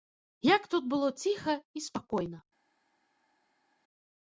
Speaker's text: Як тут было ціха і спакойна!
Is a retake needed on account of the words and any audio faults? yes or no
no